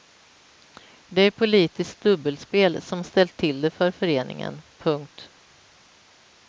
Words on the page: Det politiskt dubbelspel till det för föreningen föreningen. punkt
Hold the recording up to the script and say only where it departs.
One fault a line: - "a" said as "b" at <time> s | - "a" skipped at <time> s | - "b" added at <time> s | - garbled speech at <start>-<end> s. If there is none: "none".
- "är" added at 1.2 s
- "som ställt" added at 2.8 s
- "föreningen" skipped at 4.6 s